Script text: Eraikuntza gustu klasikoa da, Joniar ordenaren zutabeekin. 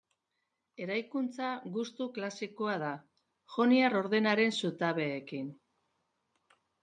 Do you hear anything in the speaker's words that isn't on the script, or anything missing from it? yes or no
no